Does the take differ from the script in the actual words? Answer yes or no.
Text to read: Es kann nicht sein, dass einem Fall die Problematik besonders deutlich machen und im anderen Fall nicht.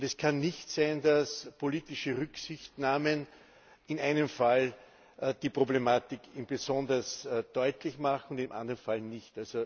yes